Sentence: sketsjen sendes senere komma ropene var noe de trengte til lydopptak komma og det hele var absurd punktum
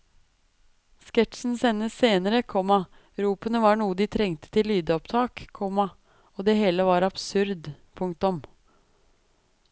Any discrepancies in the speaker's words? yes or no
no